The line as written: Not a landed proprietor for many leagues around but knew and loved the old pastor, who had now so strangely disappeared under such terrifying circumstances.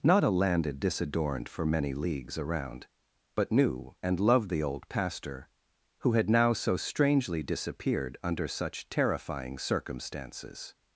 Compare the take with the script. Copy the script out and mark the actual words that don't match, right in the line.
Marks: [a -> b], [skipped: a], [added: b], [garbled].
Not a landed [proprietor -> disadorned] for many leagues around but knew and loved the old pastor, who had now so strangely disappeared under such terrifying circumstances.